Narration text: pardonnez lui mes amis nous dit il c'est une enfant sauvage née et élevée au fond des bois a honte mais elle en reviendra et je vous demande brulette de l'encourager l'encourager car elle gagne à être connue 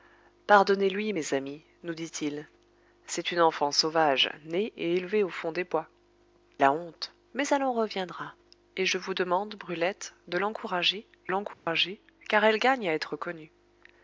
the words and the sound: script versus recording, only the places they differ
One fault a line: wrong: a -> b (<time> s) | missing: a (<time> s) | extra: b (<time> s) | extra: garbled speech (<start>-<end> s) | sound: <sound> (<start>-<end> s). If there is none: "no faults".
sound: dropout (11.5-11.7 s)